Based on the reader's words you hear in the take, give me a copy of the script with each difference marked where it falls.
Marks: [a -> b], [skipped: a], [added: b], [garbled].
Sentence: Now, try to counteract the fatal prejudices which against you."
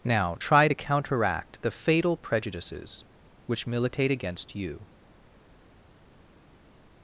Now, try to counteract the fatal prejudices which [added: militate] against you."